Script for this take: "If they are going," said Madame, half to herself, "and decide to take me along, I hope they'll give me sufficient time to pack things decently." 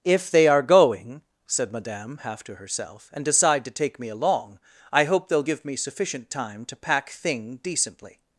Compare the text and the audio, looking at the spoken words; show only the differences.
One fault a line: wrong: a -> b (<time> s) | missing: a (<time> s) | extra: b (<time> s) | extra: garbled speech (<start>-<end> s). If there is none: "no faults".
wrong: things -> thing (7.1 s)